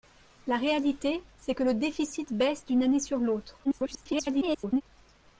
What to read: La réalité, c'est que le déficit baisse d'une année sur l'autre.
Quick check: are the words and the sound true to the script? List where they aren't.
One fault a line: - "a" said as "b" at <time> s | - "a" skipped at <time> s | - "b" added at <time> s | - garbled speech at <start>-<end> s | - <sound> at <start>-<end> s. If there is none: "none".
- garbled speech at 3.6-4.8 s